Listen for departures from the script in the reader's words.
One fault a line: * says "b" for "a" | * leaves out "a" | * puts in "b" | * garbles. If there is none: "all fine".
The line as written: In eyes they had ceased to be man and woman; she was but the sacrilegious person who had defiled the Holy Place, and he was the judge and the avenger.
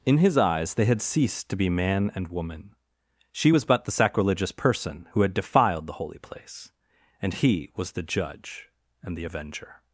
* puts in "his"